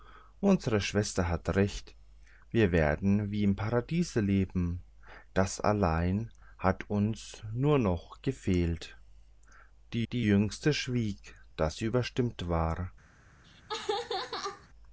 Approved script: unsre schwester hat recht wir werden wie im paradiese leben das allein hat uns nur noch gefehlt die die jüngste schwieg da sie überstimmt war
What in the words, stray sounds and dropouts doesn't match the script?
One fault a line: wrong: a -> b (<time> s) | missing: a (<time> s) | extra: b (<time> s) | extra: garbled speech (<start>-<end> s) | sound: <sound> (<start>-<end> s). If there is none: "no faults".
sound: laugh (13.4-14.7 s)